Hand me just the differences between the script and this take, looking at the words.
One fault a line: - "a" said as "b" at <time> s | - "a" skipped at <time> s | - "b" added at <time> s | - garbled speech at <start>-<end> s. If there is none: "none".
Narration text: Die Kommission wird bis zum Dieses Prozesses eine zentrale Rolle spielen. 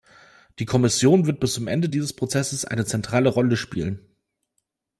- "Ende" added at 1.7 s